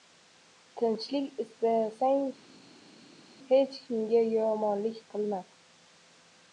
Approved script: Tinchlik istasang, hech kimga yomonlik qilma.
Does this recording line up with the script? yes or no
yes